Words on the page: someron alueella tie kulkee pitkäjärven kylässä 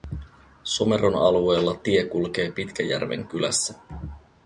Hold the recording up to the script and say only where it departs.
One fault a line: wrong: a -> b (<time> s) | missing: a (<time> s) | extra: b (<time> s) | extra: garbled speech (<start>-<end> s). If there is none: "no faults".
no faults